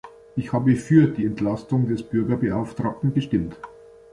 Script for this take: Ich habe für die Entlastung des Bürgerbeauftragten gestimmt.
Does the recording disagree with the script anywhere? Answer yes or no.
no